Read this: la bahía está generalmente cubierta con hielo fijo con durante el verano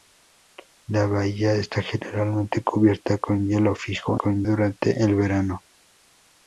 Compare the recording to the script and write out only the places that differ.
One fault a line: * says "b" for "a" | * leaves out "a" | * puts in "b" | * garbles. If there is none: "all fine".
all fine